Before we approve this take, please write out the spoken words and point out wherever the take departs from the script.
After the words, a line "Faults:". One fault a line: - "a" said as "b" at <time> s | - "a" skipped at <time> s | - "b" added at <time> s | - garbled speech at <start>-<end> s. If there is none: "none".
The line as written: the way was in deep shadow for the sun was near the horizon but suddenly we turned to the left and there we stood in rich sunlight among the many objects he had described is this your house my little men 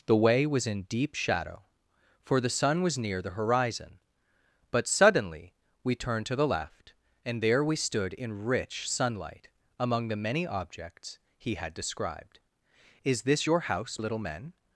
the way was in deep shadow for the sun was near the horizon but suddenly we turned to the left and there we stood in rich sunlight among the many objects he had described is this your house little men
Faults:
- "my" skipped at 14.0 s